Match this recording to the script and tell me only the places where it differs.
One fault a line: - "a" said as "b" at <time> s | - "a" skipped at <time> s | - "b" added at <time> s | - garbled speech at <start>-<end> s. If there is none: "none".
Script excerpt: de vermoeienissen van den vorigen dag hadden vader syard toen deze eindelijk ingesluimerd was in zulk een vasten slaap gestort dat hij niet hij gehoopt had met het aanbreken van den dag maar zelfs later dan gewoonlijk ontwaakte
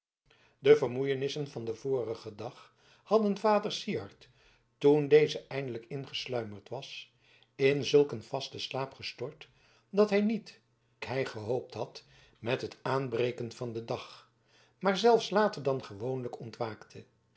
none